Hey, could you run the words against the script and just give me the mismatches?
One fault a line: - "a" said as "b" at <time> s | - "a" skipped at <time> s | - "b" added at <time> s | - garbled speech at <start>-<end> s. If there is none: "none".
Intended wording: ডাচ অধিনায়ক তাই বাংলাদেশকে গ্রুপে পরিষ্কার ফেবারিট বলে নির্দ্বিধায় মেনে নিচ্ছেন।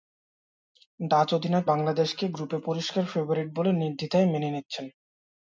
- "তাই" skipped at 1.6 s